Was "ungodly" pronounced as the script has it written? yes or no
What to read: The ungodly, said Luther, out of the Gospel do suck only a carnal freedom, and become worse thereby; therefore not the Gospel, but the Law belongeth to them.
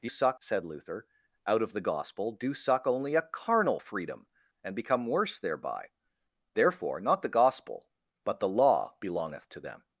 no